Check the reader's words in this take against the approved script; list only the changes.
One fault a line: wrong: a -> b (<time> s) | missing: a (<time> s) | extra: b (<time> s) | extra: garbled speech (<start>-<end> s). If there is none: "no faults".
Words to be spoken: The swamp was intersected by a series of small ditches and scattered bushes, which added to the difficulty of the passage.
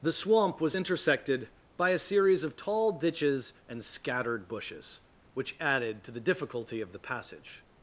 wrong: small -> tall (2.5 s)